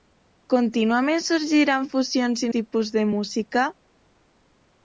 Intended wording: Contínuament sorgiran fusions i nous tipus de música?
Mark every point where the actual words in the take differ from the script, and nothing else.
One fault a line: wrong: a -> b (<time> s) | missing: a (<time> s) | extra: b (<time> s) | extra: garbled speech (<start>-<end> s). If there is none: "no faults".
missing: nous (2.5 s)